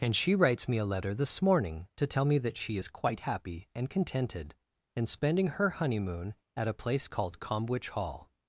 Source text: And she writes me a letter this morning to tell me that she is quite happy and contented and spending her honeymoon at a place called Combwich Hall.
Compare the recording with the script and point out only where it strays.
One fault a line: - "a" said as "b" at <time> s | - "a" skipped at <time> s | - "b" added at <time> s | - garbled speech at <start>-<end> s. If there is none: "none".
none